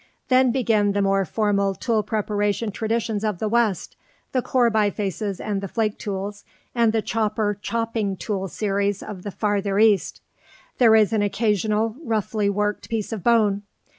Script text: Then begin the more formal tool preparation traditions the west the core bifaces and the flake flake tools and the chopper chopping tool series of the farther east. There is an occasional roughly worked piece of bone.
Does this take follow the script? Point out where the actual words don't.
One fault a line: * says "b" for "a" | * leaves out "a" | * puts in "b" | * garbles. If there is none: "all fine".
* puts in "of"
* leaves out "flake"